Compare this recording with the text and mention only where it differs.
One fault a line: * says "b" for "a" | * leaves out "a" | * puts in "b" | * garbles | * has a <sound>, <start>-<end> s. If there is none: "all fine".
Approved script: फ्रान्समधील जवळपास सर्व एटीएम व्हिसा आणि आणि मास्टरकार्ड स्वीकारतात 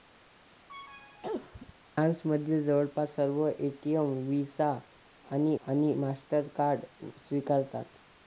* has a cough, 0.7-1.7 s